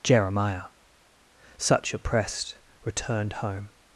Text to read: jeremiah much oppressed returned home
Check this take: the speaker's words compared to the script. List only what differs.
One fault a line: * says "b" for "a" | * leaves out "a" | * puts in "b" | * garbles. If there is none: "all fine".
* says "such" for "much"